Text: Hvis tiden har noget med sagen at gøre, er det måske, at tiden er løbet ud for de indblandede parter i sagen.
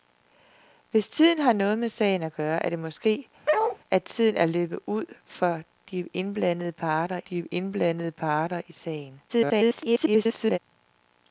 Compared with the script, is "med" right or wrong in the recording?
right